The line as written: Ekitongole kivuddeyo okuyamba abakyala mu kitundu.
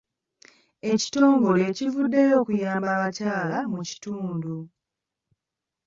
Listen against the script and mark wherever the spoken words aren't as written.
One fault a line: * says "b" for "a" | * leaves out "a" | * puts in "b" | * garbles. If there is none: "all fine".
all fine